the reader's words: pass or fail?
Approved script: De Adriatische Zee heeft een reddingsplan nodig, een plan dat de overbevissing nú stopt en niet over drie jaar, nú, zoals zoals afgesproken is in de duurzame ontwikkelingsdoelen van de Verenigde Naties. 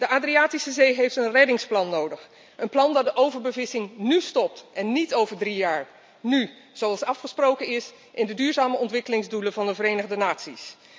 fail